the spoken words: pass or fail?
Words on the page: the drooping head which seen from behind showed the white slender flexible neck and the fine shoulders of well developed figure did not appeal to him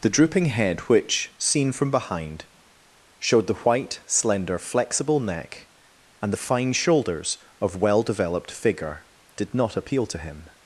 pass